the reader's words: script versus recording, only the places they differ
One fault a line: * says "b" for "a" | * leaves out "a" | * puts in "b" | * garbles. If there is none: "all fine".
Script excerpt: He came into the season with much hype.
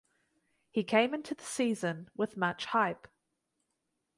all fine